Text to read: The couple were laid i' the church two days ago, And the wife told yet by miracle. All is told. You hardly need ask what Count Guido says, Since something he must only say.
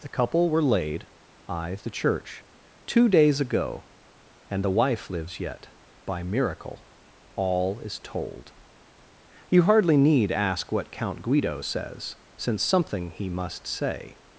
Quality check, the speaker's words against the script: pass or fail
fail